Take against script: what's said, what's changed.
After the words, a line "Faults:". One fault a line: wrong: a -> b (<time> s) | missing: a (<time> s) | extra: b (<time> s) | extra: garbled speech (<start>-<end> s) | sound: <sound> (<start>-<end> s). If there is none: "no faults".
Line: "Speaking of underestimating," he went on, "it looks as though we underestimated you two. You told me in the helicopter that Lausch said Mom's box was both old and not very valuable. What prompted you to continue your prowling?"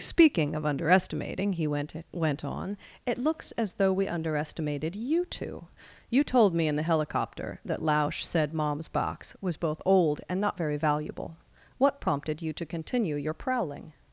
"Speaking of underestimating," he went went on, "it looks as though we underestimated you two. You told me in the helicopter that Lausch said Mom's box was both old and not very valuable. What prompted you to continue your prowling?"
Faults:
extra: went (2.1 s)